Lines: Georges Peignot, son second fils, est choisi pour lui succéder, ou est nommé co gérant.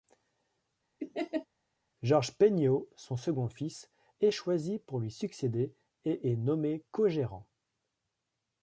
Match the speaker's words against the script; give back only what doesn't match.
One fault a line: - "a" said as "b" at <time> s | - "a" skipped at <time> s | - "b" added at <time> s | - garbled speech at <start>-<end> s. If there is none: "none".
- "ou" said as "et" at 6.0 s